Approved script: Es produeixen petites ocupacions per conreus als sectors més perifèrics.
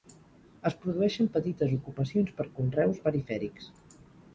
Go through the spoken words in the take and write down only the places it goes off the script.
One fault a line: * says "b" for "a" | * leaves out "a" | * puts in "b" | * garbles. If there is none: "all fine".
* leaves out "als sectors més"